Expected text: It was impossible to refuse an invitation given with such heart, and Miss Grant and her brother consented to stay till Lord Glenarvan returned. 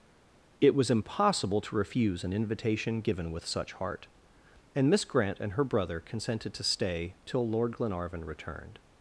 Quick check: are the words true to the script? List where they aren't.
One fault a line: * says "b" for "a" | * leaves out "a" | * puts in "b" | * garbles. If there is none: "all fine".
all fine